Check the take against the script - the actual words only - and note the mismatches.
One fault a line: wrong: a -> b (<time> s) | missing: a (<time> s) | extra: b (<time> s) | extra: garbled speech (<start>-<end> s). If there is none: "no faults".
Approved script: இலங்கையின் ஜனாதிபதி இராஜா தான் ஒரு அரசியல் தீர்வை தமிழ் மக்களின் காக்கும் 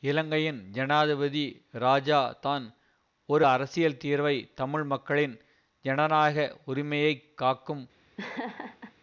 extra: ஜனநாயக உரிமையை (5.8 s)